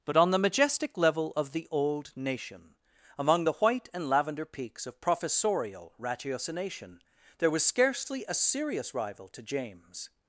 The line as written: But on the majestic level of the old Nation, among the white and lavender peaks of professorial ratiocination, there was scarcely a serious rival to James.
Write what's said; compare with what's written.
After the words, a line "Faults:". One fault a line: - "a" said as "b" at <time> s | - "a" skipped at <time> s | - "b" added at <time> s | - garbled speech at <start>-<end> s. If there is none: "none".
But on the majestic level of the old Nation, among the white and lavender peaks of professorial ratiocination, there was scarcely a serious rival to James.
Faults:
none